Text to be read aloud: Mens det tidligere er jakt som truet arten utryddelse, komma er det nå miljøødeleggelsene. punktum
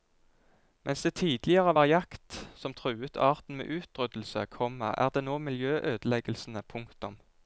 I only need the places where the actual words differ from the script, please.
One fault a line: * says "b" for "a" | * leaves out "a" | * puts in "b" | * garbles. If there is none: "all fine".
* says "var" for "er"
* puts in "med"